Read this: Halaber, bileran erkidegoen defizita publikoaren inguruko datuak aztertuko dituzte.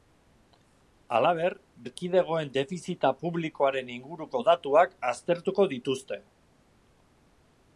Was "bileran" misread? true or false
true